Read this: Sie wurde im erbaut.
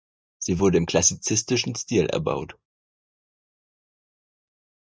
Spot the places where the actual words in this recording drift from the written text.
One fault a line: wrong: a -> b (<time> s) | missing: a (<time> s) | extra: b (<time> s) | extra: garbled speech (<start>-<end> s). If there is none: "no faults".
extra: klassizistischen Stil (0.8 s)